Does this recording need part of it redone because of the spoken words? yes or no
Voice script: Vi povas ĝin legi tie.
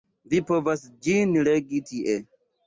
no